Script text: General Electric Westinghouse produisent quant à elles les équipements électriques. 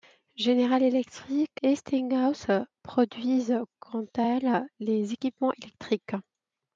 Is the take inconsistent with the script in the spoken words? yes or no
no